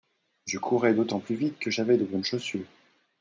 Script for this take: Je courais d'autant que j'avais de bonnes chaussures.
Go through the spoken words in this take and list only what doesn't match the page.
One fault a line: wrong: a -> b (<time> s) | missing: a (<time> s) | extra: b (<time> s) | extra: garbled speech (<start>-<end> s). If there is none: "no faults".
extra: plus vite (1.2 s)